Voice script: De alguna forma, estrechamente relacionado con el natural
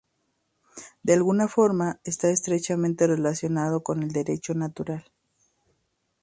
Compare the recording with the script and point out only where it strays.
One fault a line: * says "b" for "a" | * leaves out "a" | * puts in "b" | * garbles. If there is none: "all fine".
* puts in "está"
* puts in "derecho"